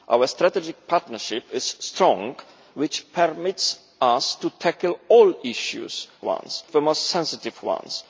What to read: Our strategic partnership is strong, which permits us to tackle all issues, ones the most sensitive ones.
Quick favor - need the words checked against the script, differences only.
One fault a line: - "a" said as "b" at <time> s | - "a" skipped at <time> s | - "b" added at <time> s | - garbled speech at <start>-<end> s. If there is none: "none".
none